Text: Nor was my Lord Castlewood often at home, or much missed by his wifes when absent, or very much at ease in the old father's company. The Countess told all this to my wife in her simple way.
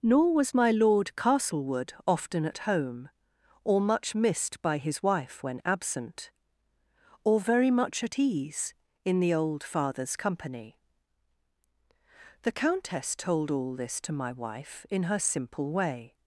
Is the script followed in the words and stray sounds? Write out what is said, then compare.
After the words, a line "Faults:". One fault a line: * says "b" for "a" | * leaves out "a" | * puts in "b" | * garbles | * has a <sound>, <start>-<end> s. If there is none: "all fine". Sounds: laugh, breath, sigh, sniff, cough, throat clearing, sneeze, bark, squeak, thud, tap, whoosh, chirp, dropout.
Nor was my Lord Castlewood often at home, or much missed by his wife when absent, or very much at ease in the old father's company. The Countess told all this to my wife in her simple way.
Faults:
* says "wife" for "wifes"